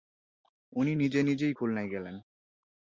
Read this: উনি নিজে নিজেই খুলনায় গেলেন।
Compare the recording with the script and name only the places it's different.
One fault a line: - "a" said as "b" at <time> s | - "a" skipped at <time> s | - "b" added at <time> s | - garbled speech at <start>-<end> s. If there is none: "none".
none